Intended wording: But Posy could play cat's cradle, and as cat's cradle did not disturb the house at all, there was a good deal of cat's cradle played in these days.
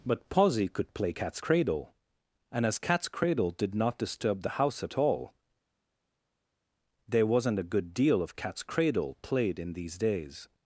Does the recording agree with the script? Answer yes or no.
no